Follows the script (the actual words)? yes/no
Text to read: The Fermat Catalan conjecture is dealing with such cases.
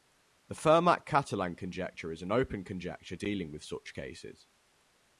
no